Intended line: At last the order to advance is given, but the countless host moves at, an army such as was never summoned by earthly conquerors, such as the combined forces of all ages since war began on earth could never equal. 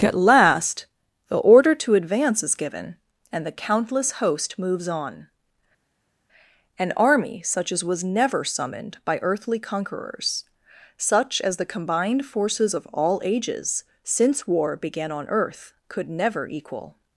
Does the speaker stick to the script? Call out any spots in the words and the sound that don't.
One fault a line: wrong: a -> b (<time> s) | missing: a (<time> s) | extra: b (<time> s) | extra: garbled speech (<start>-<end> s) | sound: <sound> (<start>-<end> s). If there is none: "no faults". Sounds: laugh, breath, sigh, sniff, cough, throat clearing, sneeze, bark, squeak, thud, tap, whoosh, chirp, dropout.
wrong: but -> and (3.3 s)
wrong: at -> on (4.9 s)